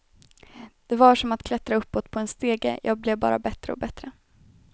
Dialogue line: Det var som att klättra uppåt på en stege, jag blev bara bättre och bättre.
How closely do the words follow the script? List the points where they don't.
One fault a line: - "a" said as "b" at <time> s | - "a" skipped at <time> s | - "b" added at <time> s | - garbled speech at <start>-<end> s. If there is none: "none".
none